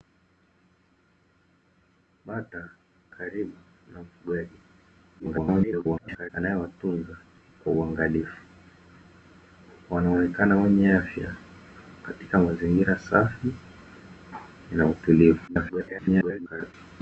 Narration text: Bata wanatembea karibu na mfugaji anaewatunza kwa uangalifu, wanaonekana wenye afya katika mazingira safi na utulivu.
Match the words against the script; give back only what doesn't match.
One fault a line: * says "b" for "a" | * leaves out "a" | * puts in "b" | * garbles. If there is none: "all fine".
* leaves out "wanatembea"
* garbles
* garbles